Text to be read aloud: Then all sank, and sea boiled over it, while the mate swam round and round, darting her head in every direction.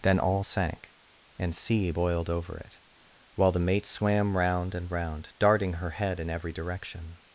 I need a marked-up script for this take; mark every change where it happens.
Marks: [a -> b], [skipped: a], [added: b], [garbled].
Then all sank, and sea boiled over it, while the mate swam round and round, darting her head in every direction.